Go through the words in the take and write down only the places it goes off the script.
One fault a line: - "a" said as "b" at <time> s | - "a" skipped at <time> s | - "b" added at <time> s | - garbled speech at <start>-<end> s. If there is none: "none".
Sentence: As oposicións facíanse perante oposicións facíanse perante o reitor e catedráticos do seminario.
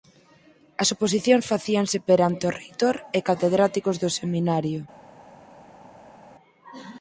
- "oposicións facíanse perante" skipped at 2.4 s